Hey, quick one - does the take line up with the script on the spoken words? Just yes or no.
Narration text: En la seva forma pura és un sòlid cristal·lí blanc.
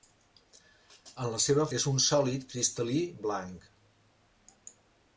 no